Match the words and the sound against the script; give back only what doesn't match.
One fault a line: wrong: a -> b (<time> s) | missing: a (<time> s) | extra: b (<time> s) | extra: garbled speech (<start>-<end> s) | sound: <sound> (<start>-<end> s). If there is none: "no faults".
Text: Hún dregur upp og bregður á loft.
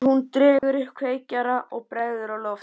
sound: dropout (0.6-0.6 s)
extra: kveikjara (1.0 s)